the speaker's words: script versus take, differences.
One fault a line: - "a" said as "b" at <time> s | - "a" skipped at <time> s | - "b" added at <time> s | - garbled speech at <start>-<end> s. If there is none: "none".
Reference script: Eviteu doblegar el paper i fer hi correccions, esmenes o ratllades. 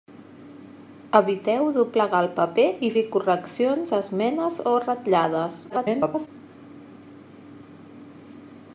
- "fer" skipped at 2.9 s
- garbled speech at 5.7-6.3 s